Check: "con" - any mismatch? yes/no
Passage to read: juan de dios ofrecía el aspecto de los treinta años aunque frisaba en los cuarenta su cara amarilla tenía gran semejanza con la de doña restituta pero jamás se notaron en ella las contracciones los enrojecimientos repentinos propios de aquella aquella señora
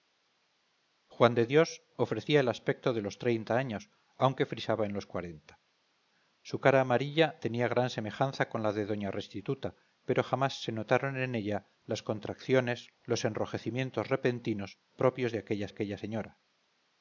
no